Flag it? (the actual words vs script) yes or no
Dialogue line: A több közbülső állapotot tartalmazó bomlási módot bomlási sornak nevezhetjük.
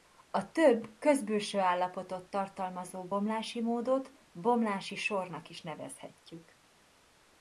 yes